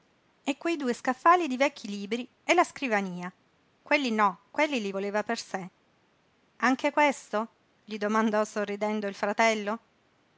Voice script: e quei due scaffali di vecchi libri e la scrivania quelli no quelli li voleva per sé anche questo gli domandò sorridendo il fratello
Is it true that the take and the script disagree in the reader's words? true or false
false